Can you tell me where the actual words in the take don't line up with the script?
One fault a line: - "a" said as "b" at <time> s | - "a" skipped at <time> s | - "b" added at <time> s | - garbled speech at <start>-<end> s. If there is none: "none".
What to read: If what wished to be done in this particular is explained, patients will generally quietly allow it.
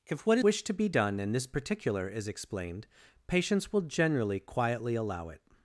none